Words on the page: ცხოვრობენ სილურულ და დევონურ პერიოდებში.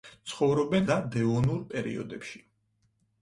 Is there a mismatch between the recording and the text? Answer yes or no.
yes